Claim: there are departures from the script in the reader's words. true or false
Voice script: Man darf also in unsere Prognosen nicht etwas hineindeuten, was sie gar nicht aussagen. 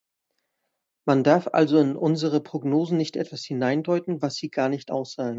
false